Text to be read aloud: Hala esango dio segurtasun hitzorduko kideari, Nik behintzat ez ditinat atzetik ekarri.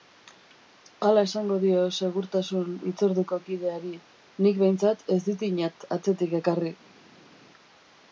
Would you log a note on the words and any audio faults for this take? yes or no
no